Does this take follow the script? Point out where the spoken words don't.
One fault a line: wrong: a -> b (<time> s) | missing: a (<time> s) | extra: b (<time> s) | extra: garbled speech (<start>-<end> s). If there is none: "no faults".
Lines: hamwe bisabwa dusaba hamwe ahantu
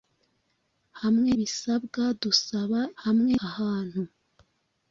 no faults